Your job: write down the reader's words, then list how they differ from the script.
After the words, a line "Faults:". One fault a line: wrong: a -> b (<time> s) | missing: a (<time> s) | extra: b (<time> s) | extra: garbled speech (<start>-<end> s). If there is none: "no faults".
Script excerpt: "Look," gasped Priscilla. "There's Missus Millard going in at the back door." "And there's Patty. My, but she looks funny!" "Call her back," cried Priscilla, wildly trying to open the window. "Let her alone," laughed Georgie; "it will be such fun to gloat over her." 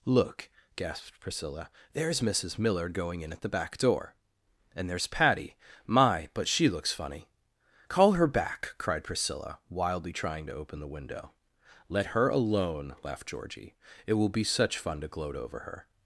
"Look," gasped Priscilla. "There's Missus Millard going in at the back door." "And there's Patty. My, but she looks funny!" "Call her back," cried Priscilla, wildly trying to open the window. "Let her alone," laughed Georgie; "it will be such fun to gloat over her."
Faults:
no faults